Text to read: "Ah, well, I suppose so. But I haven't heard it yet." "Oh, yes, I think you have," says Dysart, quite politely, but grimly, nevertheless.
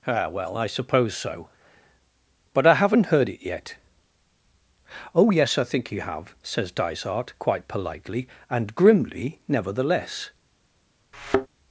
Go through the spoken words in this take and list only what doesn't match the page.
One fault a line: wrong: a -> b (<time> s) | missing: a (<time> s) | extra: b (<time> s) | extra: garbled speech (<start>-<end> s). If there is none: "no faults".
wrong: but -> and (8.5 s)